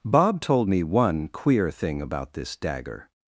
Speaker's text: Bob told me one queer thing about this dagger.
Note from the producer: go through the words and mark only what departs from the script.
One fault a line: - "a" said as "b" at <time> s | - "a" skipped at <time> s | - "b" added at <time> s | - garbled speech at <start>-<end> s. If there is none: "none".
none